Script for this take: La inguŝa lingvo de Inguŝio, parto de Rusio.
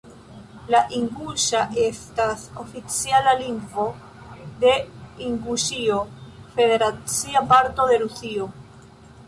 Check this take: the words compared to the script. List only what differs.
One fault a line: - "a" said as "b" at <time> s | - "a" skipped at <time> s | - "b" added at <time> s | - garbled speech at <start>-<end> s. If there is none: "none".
- "estas oficiala" added at 1.8 s
- "federacia" added at 6.6 s